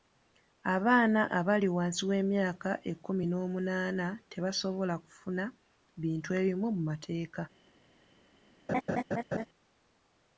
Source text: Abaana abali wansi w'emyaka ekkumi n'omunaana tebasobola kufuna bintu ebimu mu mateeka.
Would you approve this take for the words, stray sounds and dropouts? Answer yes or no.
no